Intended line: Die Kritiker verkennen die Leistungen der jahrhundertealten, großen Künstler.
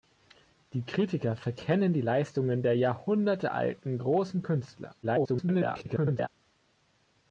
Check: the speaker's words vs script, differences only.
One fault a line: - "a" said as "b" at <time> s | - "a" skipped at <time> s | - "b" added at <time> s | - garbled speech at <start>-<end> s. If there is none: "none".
- garbled speech at 5.0-6.3 s